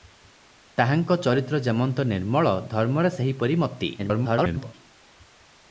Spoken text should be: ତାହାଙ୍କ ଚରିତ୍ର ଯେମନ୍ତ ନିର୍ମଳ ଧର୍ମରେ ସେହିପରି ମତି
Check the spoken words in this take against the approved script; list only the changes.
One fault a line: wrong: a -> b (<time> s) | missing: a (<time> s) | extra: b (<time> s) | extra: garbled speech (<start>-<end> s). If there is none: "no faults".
extra: garbled speech (4.0-4.7 s)